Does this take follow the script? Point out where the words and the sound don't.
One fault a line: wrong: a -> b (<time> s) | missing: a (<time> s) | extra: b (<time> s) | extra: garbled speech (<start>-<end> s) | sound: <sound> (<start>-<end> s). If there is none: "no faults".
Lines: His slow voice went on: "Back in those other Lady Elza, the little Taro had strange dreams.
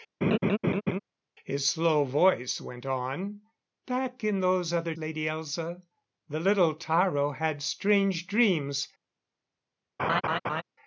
sound: laugh (0.2-1.0 s)
sound: laugh (10.0-10.6 s)